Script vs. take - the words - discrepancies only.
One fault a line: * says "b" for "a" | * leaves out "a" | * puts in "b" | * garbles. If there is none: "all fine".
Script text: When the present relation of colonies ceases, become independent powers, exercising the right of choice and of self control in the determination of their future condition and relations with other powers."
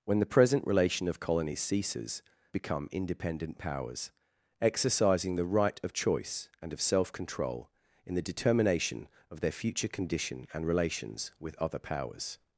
all fine